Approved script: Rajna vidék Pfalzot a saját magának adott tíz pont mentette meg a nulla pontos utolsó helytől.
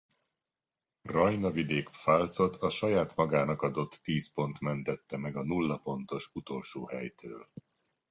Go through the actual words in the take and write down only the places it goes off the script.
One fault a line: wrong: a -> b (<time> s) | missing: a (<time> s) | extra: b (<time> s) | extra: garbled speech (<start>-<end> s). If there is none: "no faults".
no faults